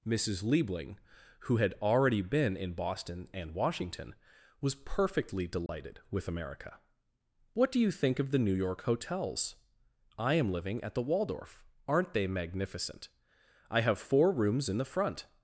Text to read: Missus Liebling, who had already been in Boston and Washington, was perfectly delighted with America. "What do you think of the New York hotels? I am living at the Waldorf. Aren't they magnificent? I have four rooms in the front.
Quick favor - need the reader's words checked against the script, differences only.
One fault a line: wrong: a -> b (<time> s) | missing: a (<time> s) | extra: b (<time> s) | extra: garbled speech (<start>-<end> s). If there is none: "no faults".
no faults